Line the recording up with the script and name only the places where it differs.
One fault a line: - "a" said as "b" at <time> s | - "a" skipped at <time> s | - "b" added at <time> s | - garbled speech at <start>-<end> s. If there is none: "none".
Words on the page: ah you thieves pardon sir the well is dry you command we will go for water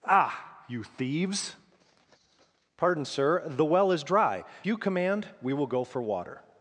none